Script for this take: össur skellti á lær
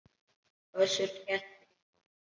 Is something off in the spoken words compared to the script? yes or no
no